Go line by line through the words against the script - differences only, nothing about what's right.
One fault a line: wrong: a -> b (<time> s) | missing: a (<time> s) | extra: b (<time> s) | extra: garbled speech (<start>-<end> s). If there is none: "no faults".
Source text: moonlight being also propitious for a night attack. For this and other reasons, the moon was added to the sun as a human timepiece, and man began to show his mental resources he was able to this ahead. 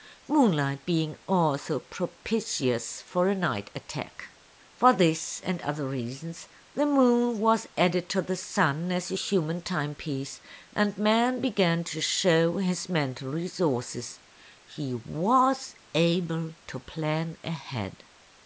wrong: this -> plan (16.8 s)